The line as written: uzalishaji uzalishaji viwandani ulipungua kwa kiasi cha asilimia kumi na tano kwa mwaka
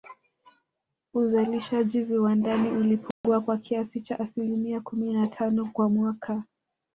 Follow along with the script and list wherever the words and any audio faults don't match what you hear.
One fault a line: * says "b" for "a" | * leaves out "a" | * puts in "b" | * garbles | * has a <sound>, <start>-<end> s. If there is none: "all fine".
* leaves out "uzalishaji"
* has a dropout, 3.1-3.2 s